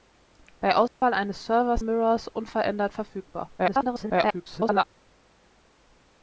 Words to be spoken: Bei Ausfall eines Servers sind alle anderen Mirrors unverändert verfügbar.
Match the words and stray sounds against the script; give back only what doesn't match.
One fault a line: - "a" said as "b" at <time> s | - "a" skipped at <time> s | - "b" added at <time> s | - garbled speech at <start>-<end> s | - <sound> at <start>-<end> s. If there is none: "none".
- dropout at 0.9-1.0 s
- "sind alle anderen" skipped at 1.8 s
- garbled speech at 3.6-4.8 s